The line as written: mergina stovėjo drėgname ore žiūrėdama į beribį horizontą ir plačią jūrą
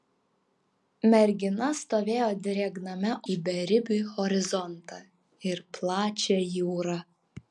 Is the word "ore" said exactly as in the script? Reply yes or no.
no